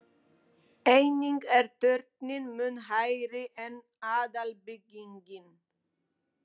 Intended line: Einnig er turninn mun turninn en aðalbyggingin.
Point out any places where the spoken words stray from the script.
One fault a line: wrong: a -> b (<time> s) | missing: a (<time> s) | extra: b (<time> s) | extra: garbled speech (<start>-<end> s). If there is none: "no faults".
wrong: turninn -> hærri (2.9 s)